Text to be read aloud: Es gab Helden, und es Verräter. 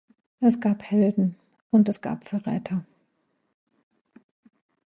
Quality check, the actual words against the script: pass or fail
fail